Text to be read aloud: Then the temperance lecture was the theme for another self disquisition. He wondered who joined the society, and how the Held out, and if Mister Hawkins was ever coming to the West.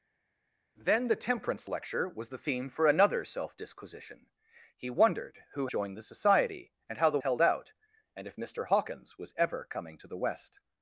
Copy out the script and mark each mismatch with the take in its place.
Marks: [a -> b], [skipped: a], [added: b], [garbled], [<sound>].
Then the temperance lecture was the theme for another self disquisition. He wondered who joined the society, and how the Held out, and if Mister Hawkins was ever coming to the West.